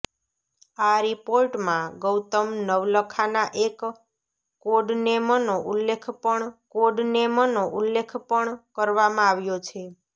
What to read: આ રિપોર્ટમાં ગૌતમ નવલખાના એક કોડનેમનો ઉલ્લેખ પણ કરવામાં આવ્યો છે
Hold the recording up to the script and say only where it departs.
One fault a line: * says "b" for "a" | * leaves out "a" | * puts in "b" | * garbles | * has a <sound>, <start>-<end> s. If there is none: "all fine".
* puts in "કોડનેમનો ઉલ્લેખ પણ"